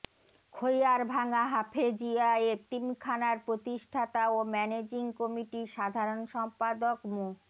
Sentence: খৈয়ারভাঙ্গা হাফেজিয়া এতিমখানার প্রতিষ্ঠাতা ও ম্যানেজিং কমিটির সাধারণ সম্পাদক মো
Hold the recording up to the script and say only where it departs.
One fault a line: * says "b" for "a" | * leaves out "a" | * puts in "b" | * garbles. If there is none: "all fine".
all fine